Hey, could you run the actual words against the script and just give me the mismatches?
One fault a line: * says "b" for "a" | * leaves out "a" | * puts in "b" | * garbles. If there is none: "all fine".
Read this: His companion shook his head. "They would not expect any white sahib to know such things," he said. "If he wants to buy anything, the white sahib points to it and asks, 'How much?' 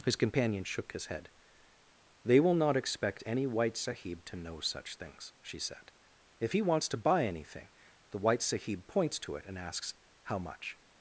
* says "will" for "would"
* says "she" for "he"